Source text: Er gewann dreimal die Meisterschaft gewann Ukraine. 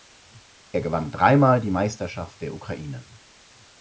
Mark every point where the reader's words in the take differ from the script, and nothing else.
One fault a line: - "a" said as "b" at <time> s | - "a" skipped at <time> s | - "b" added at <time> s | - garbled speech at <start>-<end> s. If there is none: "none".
- "gewann" said as "der" at 2.4 s